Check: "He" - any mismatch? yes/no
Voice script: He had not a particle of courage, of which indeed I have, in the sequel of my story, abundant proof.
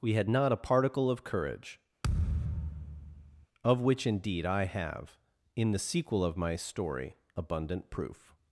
yes